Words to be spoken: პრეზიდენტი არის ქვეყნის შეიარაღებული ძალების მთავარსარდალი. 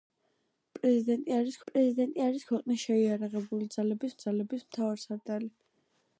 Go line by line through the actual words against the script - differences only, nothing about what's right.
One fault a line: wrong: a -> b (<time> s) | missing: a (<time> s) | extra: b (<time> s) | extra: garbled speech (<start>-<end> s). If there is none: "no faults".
extra: პრეზიდენტი არის (1.7 s)
extra: ძალების (4.3 s)